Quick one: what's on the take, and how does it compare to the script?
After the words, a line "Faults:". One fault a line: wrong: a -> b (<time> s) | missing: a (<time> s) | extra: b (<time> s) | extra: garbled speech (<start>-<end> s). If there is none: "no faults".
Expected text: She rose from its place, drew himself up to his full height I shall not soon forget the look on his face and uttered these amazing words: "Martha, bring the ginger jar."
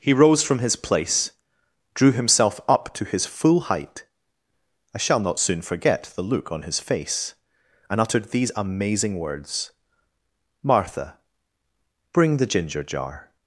He rose from his place, drew himself up to his full height I shall not soon forget the look on his face and uttered these amazing words: "Martha, bring the ginger jar."
Faults:
wrong: She -> He (0.0 s)
wrong: its -> his (0.6 s)